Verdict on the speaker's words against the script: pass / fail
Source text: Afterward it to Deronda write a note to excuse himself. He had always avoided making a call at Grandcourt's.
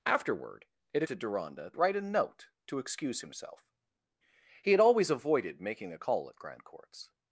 pass